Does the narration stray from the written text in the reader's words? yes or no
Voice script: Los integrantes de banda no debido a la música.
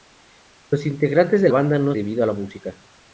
no